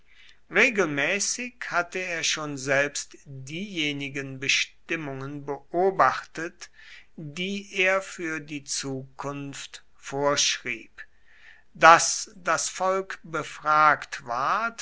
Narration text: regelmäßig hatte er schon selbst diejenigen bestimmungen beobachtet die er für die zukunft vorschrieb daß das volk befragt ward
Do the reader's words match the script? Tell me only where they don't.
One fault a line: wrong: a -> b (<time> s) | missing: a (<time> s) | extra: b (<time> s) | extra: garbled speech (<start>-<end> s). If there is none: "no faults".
no faults